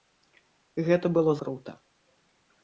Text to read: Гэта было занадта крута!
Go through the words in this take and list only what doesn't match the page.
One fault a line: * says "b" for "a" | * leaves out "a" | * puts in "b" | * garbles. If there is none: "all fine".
* leaves out "занадта"